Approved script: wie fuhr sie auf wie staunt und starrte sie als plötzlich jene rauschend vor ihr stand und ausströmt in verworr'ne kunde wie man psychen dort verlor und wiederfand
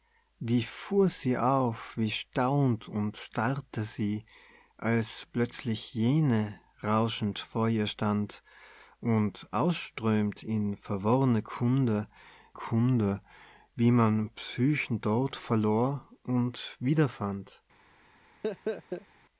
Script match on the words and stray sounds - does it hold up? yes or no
no